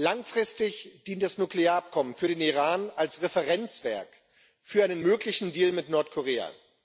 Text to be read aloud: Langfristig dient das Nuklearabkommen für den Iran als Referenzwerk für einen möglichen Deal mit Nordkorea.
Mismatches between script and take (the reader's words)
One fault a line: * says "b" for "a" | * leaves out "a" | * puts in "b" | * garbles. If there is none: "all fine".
all fine